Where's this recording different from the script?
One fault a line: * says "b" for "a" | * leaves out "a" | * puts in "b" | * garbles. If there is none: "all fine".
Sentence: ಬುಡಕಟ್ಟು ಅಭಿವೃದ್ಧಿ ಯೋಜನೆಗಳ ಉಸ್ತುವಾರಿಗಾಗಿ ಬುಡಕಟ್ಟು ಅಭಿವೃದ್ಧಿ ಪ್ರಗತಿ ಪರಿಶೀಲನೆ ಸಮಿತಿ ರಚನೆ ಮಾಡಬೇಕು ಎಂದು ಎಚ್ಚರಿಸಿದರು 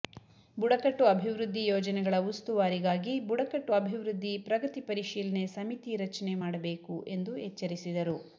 all fine